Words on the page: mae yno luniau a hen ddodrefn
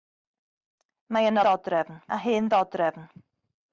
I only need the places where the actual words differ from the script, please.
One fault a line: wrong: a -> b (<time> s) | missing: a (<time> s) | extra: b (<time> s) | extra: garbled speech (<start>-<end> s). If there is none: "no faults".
wrong: luniau -> ddodrefn (1.5 s)